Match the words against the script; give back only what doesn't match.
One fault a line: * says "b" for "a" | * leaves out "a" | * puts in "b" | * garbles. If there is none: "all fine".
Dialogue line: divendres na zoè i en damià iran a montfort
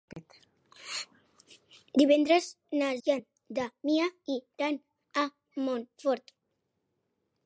* leaves out "zoè"